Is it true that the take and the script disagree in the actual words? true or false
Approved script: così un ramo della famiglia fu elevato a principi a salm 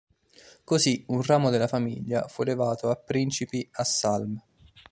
false